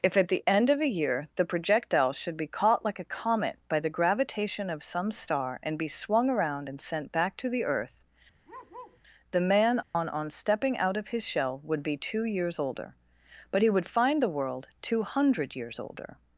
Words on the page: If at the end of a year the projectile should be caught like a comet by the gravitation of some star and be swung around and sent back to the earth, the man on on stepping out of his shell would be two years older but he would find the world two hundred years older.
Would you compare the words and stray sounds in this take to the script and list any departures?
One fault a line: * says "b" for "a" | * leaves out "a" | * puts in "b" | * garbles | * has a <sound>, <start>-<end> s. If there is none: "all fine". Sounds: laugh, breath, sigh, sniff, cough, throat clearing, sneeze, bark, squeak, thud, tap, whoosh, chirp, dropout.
* has a bark, 8.4-9.0 s
* has a dropout, 9.8-10.0 s